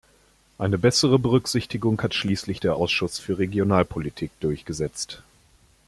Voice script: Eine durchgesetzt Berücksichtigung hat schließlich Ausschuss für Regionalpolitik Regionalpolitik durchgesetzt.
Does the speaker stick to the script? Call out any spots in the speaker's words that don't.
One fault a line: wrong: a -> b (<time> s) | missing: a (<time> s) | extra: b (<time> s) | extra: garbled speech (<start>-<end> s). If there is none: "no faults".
wrong: durchgesetzt -> bessere (0.8 s)
extra: der (2.6 s)
missing: Regionalpolitik (4.3 s)